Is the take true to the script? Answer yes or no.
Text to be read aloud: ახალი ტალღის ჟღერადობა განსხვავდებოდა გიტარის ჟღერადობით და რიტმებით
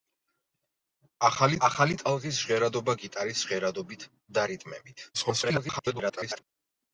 no